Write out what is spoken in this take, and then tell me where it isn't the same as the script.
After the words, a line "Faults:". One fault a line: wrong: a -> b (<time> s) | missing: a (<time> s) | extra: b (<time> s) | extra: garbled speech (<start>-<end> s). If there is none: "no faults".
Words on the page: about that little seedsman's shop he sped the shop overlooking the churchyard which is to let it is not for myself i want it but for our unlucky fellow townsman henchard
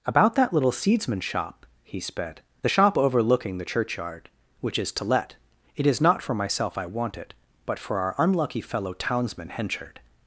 about that little seedsman's shop he sped the shop overlooking the churchyard which is to let it is not for myself i want it but for our unlucky fellow townsman henchard
Faults:
no faults